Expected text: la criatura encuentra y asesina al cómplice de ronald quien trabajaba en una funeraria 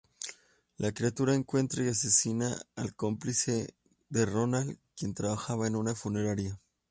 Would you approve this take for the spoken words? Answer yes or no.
yes